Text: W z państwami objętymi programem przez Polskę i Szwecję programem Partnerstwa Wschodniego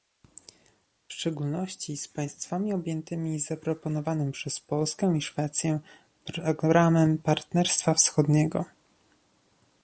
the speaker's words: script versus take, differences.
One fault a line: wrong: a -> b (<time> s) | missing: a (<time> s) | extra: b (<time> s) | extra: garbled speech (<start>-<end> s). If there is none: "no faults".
extra: szczególności (1.1 s)
wrong: programem -> zaproponowanym (3.4 s)